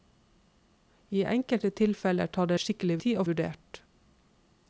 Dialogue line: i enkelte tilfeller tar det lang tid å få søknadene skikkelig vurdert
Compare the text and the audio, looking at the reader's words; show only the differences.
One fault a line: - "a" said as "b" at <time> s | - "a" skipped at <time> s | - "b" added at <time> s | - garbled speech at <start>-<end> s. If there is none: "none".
- "lang" said as "skikkelig" at 2.7 s
- "få søknadene skikkelig" skipped at 3.3 s